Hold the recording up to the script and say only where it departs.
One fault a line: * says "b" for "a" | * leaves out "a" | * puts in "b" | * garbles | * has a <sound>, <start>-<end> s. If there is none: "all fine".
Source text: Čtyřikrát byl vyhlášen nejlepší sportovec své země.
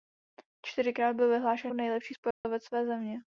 * has a dropout, 2.3-2.4 s